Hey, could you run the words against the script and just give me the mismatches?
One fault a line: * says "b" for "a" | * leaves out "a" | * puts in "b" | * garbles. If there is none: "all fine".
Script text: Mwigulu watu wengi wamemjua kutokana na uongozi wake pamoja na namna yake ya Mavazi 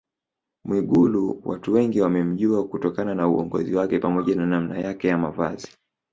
all fine